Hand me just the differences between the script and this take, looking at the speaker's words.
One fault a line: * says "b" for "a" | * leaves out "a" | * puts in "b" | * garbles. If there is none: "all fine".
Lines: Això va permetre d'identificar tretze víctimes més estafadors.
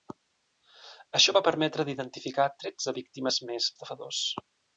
all fine